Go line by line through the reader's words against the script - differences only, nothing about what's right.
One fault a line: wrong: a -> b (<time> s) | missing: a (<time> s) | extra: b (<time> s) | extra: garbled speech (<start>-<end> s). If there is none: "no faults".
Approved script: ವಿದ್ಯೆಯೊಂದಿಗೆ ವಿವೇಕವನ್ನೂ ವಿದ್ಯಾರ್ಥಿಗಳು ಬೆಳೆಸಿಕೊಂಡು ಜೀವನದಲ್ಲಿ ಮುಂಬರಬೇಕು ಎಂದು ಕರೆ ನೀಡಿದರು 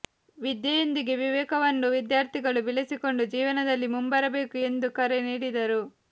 no faults